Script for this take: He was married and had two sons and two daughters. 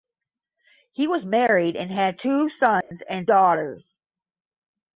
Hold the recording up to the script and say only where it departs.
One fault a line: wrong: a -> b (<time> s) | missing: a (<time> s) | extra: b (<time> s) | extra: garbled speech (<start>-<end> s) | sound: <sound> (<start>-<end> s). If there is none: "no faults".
sound: dropout (2.8-2.9 s)
missing: two (3.3 s)